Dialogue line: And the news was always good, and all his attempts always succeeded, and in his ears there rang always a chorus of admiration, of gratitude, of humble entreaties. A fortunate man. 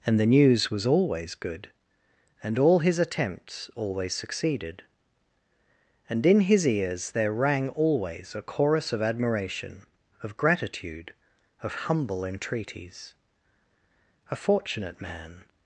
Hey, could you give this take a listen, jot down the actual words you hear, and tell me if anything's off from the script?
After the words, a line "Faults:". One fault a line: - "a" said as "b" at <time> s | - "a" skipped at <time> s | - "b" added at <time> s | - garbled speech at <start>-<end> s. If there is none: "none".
And the news was always good, and all his attempts always succeeded, and in his ears there rang always a chorus of admiration, of gratitude, of humble entreaties. A fortunate man.
Faults:
none